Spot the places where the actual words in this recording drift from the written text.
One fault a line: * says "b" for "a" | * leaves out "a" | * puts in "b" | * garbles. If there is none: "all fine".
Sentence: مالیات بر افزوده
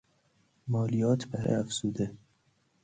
all fine